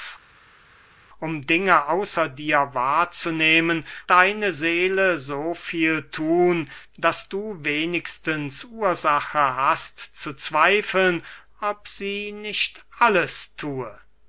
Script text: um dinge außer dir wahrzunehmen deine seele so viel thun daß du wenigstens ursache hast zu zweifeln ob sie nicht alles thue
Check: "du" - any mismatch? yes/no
no